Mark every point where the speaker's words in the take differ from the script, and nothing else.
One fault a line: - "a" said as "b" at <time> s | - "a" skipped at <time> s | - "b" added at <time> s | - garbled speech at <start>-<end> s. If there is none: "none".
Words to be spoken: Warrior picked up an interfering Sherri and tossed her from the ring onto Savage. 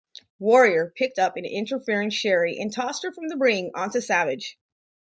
none